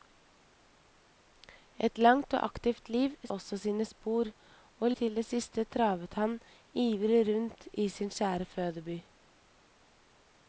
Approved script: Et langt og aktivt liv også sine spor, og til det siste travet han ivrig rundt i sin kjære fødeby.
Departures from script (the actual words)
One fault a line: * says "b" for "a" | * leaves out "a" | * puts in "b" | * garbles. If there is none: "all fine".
all fine